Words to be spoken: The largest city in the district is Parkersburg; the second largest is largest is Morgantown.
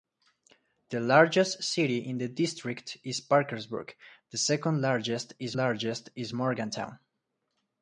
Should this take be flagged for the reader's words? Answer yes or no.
no